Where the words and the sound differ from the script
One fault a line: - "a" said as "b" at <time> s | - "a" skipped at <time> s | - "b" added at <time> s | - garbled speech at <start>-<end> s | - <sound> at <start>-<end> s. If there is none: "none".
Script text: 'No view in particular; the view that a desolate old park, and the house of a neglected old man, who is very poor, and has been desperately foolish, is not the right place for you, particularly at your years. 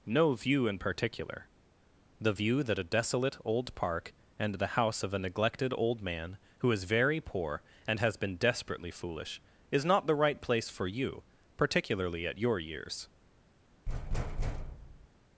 - thud at 13.9-15.1 s